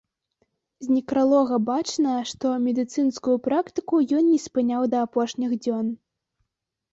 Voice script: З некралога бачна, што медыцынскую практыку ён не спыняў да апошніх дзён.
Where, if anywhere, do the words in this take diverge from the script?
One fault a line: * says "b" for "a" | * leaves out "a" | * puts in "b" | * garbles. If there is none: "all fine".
all fine